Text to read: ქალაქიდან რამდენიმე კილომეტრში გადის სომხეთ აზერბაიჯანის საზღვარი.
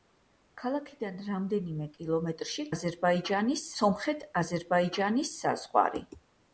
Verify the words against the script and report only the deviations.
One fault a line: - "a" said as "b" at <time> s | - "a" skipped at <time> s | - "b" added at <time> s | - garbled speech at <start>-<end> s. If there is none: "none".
- "გადის" said as "აზერბაიჯანის" at 2.8 s